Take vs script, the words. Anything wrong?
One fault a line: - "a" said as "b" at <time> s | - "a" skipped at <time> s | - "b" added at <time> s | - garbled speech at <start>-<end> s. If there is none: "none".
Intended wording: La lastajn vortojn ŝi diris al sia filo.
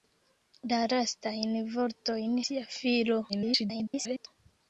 - "ŝi diris al" skipped at 2.4 s
- garbled speech at 3.3-4.3 s